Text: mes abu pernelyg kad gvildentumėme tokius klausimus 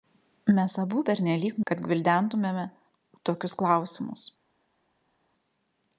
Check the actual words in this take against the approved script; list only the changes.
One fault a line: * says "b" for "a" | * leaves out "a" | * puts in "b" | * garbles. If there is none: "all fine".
all fine